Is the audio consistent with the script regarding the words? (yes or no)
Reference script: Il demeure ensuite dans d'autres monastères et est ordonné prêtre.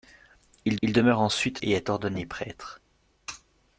no